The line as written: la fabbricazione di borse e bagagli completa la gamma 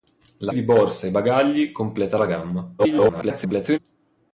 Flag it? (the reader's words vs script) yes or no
yes